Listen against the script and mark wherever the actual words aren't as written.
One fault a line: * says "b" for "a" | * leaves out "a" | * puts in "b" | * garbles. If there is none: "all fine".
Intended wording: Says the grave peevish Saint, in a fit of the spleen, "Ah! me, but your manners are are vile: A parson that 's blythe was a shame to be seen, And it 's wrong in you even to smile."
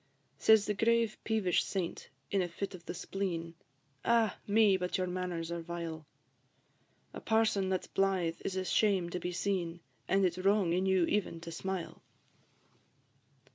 * leaves out "are"
* says "is" for "was"